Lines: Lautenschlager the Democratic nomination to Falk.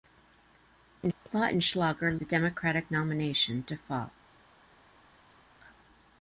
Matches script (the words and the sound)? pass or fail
pass